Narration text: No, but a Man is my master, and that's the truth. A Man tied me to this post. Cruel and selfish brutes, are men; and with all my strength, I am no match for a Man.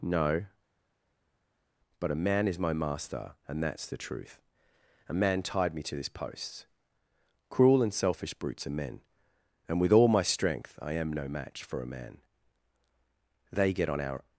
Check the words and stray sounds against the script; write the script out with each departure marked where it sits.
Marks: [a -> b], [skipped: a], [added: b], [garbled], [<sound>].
No, but a Man is my master, and that's the truth. A Man tied me to this post. Cruel and selfish brutes, are men; and with all my strength, I am no match for a Man. [added: They get on our]